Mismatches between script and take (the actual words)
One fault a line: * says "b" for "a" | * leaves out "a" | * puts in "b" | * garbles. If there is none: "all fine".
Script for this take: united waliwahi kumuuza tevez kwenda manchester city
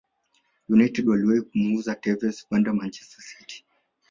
all fine